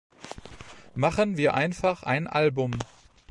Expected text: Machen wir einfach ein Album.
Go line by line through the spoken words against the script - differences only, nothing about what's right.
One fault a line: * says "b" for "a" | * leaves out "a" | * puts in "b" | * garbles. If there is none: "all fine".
all fine